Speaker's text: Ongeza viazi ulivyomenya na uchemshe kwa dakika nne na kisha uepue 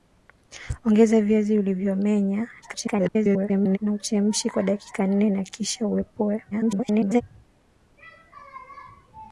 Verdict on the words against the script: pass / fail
fail